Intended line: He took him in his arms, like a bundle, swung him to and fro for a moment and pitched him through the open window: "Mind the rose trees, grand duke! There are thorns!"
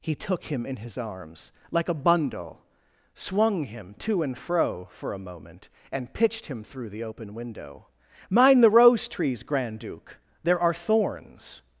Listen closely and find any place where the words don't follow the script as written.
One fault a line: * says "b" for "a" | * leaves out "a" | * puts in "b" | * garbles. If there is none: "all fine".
all fine